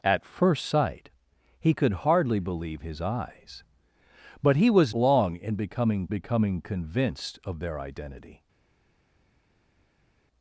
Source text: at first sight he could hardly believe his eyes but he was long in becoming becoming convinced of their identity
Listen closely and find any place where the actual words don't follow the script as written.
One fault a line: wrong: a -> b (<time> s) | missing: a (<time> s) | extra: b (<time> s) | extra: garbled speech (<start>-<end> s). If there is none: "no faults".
no faults